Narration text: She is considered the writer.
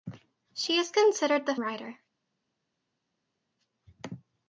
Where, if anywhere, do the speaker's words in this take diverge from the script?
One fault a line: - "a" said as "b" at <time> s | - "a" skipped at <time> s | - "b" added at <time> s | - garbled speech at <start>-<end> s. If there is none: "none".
none